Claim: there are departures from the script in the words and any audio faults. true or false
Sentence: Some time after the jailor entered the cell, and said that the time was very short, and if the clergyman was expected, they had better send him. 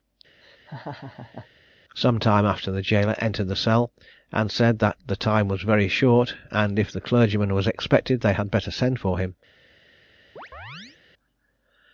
true